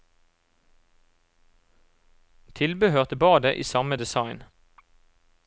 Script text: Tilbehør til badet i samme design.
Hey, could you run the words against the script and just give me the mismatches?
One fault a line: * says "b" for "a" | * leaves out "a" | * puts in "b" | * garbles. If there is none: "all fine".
all fine